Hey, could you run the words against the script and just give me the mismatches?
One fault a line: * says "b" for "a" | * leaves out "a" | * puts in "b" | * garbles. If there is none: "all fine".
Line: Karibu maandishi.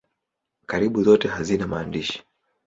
* puts in "zote hazina"